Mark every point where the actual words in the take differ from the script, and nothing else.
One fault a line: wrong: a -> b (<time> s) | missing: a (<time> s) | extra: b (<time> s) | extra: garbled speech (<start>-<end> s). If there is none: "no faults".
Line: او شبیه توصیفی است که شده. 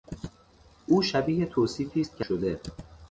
no faults